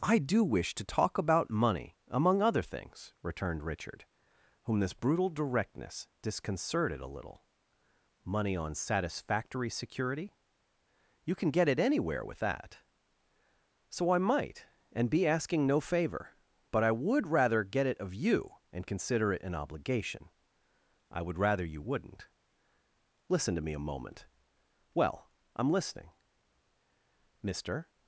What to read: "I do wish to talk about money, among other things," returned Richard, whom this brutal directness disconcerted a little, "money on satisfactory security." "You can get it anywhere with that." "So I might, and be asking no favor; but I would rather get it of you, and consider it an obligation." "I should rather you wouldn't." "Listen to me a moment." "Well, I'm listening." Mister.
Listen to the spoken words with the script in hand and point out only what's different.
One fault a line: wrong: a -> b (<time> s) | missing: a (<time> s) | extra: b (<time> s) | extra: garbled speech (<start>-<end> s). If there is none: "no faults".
wrong: should -> would (21.2 s)